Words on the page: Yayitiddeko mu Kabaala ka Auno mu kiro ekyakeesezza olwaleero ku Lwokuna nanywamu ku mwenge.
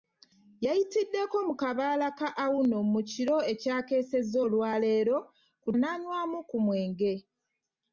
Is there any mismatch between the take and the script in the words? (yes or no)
yes